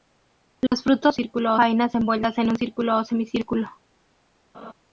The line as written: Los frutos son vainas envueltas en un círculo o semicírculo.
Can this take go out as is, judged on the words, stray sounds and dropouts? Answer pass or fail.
fail